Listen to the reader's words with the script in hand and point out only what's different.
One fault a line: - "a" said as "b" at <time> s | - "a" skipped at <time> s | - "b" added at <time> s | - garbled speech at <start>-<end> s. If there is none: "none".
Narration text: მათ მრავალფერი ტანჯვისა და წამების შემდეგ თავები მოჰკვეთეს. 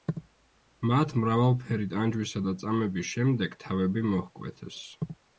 none